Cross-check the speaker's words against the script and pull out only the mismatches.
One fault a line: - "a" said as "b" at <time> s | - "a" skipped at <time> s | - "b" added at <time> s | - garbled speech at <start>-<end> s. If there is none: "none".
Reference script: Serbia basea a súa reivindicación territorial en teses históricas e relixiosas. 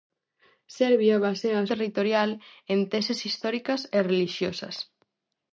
- "súa reivindicación" skipped at 1.7 s